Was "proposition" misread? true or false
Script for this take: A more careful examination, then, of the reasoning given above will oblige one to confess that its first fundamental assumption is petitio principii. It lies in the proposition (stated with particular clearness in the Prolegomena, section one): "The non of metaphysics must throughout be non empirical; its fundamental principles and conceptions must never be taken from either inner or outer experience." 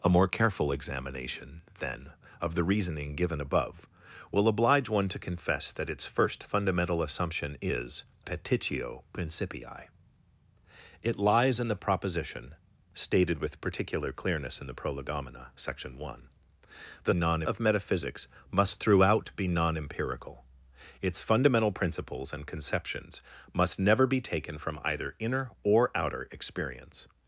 false